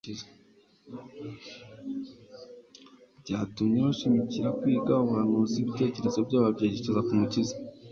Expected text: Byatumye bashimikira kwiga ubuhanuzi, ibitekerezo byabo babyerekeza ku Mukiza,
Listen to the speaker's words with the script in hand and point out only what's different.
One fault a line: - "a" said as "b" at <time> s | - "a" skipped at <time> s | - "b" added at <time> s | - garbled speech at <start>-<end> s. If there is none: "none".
none